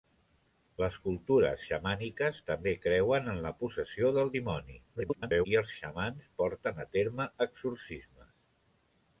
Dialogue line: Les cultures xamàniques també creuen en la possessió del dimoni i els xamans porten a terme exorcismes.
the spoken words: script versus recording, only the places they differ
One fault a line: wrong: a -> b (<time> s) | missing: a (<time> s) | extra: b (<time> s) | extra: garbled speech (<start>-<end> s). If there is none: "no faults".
extra: garbled speech (5.0-5.5 s)